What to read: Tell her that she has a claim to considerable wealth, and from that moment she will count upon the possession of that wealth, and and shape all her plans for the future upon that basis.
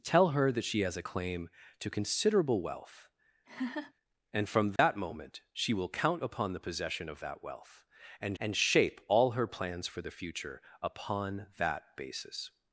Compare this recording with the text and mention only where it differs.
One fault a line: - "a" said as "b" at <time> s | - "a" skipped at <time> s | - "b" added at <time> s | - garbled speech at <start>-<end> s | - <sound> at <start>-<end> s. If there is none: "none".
- laugh at 3.5-3.9 s
- dropout at 4.8-4.8 s